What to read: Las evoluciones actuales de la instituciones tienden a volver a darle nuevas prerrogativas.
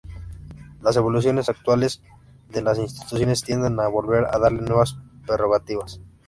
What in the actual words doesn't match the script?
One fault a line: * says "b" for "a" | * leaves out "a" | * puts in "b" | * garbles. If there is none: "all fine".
* says "las" for "la"